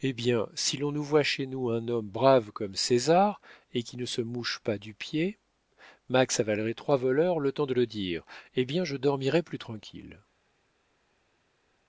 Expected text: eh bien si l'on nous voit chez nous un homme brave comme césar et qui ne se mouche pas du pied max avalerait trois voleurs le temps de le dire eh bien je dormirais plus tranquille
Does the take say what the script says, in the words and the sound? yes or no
yes